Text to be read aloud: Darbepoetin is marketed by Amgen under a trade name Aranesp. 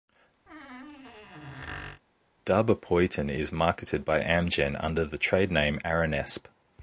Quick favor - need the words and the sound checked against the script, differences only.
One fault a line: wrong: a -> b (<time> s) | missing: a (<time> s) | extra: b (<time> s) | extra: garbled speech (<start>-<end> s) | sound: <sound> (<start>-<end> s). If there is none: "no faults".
sound: squeak (0.5-2.0 s)
wrong: a -> the (5.0 s)